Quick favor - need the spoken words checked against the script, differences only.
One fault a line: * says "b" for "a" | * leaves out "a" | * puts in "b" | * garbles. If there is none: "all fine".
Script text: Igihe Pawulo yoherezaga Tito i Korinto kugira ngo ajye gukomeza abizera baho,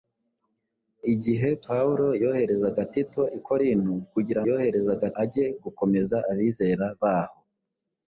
* says "yoherezaga" for "ngo"